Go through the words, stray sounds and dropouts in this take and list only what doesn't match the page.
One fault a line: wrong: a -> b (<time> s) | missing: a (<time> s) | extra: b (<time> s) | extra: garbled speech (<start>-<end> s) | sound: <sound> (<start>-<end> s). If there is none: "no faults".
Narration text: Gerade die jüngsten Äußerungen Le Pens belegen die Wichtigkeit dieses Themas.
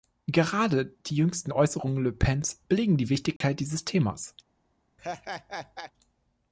sound: dropout (3.4-3.4 s)
sound: laugh (5.0-5.9 s)